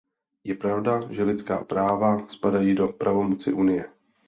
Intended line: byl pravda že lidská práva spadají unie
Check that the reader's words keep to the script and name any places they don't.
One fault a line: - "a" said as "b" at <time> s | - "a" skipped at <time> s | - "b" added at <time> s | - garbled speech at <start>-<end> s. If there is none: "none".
- "byl" said as "je" at 0.4 s
- "do pravomoci" added at 2.7 s